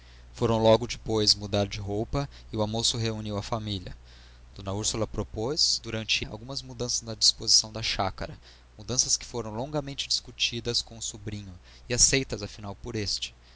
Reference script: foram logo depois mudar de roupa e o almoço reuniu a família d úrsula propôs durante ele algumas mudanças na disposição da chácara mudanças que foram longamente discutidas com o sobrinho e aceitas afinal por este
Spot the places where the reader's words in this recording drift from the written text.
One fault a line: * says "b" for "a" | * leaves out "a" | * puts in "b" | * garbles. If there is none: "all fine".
* leaves out "ele"